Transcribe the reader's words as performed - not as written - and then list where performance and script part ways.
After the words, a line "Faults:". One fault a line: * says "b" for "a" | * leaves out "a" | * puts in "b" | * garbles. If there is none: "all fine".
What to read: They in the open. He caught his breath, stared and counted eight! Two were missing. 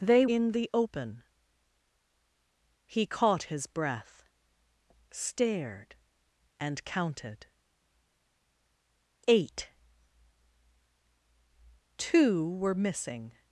They in the open. He caught his breath, stared and counted eight! Two were missing.
Faults:
all fine